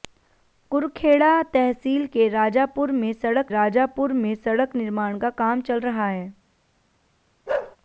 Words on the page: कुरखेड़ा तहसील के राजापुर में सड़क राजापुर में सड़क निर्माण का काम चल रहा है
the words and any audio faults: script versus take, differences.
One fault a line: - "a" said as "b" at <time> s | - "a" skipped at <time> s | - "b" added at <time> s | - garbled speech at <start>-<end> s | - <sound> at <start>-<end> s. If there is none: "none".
- bark at 7.5-7.8 s